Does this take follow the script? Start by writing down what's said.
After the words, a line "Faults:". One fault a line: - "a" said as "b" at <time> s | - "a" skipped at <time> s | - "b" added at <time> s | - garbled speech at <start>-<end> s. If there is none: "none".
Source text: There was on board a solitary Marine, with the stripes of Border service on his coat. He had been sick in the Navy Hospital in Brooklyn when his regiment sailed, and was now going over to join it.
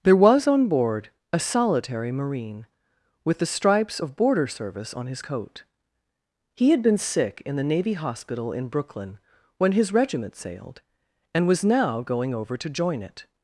There was on board a solitary Marine, with the stripes of Border service on his coat. He had been sick in the Navy Hospital in Brooklyn when his regiment sailed, and was now going over to join it.
Faults:
none